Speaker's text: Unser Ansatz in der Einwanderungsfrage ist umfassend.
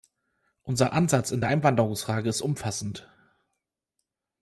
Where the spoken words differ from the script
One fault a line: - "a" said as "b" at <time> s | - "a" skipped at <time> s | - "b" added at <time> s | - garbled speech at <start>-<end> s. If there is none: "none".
none